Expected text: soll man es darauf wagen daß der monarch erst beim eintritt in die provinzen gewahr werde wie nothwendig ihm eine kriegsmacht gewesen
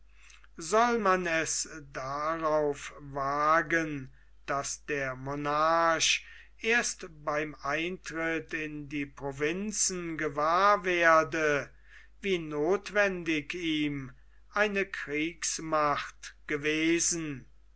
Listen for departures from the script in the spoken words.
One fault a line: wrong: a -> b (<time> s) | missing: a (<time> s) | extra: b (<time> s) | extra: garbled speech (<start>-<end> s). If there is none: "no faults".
no faults